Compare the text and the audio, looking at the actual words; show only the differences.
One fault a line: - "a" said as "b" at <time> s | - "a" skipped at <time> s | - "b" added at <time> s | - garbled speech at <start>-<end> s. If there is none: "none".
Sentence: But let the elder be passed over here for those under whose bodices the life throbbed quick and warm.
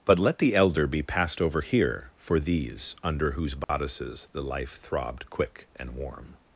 - "those" said as "these" at 2.4 s